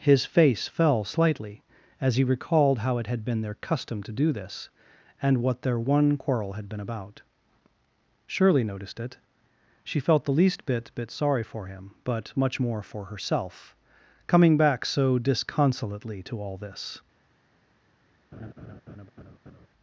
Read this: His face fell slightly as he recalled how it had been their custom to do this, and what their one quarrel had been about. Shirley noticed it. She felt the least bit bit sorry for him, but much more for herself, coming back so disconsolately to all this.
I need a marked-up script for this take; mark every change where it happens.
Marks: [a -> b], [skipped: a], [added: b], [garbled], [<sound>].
His face fell slightly as he recalled how it had been their custom to do this, and what their one quarrel had been about. Shirley noticed it. She felt the least bit bit sorry for him, but much more for herself, coming back so disconsolately to all this. [laugh]